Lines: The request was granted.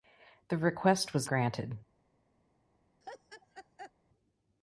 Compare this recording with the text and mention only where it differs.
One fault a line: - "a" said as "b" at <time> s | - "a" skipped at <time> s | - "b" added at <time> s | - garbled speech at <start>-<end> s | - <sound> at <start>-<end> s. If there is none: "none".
- laugh at 3.0-3.9 s